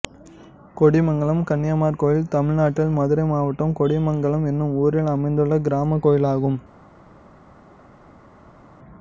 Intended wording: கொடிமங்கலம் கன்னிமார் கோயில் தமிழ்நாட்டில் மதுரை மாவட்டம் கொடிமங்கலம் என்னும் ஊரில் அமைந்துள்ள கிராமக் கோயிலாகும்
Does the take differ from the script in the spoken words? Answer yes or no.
no